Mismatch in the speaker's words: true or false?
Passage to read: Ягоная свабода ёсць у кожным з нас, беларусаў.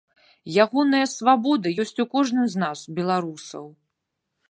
false